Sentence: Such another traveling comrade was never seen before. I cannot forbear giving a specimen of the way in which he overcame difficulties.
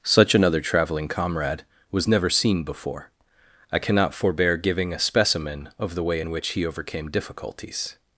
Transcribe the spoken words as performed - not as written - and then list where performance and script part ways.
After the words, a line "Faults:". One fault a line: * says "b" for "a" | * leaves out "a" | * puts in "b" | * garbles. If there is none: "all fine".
Such another traveling comrade was never seen before. I cannot forbear giving a specimen of the way in which he overcame difficulties.
Faults:
all fine